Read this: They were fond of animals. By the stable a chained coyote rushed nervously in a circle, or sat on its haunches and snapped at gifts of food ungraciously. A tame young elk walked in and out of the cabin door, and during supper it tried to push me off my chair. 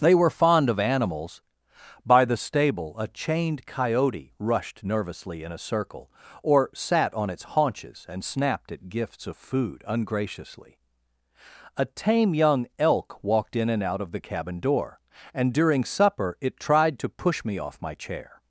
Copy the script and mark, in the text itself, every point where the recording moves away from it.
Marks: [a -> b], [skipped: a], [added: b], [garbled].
They were fond of animals. By the stable a chained coyote rushed nervously in a circle, or sat on its haunches and snapped at gifts of food ungraciously. A tame young elk walked in and out of the cabin door, and during supper it tried to push me off my chair.